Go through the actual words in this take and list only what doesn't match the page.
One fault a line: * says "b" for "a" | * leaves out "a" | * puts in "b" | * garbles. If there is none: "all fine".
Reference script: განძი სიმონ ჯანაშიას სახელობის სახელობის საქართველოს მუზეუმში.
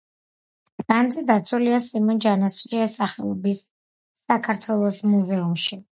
* puts in "დაცულია"
* leaves out "სახელობის"